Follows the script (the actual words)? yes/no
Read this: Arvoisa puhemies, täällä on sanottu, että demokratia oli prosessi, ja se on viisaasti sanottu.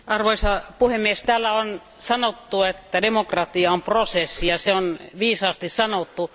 no